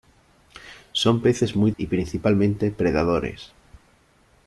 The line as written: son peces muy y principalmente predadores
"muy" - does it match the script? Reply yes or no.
yes